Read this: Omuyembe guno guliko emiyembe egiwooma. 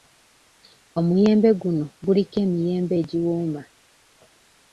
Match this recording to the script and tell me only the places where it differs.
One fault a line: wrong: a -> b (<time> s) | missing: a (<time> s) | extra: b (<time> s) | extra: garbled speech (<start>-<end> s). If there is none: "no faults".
no faults